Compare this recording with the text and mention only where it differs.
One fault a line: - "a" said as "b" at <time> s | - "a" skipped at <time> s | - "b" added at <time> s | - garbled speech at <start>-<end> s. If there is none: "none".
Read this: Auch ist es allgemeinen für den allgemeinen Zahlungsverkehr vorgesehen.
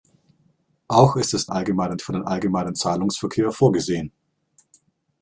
none